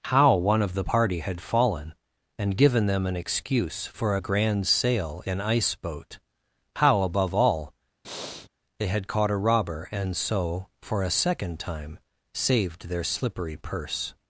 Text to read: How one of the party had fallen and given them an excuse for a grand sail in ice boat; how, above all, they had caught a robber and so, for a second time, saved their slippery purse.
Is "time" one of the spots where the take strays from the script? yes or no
no